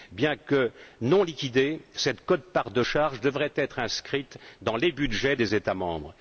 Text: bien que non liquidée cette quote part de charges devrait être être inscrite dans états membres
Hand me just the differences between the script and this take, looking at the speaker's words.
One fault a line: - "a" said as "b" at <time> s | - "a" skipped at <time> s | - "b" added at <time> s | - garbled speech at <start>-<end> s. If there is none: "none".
- "être" skipped at 3.8 s
- "les budgets des" added at 4.8 s